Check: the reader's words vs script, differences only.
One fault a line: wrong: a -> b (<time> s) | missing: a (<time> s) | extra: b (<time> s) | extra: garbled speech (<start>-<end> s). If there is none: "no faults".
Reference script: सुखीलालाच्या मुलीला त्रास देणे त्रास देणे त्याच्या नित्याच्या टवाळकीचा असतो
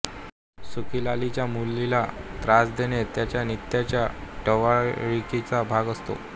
missing: त्रास देणे (3.0 s)
extra: भाग (5.7 s)